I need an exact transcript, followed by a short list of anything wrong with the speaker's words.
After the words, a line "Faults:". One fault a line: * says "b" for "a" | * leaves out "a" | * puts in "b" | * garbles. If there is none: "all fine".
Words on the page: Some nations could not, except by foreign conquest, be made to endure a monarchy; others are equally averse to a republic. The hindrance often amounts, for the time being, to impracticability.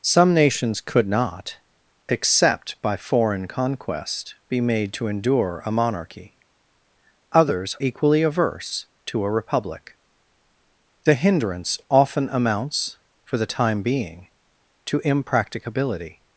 Some nations could not, except by foreign conquest, be made to endure a monarchy; others equally averse to a republic. The hindrance often amounts, for the time being, to impracticability.
Faults:
* leaves out "are"